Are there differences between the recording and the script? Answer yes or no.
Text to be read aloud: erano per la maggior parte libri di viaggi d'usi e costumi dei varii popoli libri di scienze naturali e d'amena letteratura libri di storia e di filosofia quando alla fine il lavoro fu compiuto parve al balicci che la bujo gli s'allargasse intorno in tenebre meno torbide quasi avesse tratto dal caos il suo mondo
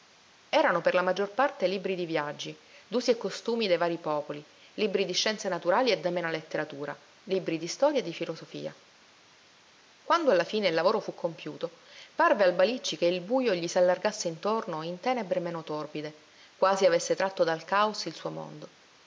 yes